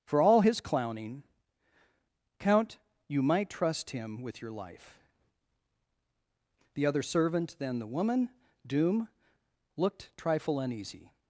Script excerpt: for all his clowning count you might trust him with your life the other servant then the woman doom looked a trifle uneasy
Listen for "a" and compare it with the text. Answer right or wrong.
wrong